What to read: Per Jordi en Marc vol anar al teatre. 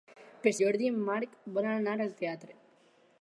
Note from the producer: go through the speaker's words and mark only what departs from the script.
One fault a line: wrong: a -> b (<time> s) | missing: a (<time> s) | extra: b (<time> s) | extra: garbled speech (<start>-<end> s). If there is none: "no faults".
no faults